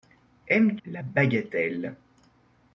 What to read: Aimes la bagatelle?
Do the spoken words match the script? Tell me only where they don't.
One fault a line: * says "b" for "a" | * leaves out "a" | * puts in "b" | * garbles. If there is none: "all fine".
all fine